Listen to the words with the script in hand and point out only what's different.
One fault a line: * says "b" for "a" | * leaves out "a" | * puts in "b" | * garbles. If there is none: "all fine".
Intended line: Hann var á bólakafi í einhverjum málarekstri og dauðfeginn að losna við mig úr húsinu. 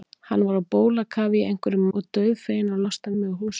* leaves out "málarekstri"
* leaves out "við"